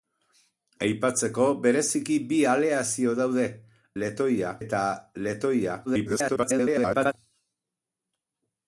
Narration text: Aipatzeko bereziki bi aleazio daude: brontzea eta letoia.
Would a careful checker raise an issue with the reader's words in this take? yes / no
yes